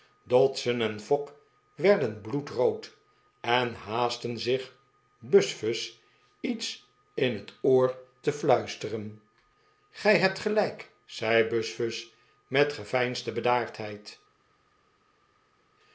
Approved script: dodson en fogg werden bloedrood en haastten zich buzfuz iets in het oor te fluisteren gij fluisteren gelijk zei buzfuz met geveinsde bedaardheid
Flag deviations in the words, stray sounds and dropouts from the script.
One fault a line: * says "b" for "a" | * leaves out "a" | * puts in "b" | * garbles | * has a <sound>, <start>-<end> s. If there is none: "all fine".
* says "hebt" for "fluisteren"